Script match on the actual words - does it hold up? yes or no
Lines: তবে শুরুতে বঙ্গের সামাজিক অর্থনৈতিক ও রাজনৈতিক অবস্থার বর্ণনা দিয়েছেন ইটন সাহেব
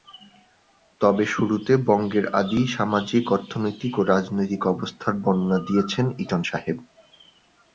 no